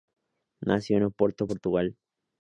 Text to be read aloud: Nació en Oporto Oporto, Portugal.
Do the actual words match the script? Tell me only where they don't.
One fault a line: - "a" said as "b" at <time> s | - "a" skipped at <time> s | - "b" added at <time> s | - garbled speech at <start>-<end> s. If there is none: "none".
- "Oporto" skipped at 1.5 s